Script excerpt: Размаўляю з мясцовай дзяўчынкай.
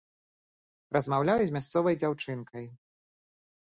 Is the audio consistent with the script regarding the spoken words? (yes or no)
yes